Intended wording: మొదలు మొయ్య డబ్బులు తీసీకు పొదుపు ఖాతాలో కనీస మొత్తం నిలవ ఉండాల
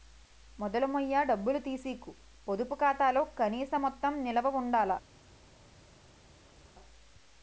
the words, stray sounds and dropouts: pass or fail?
pass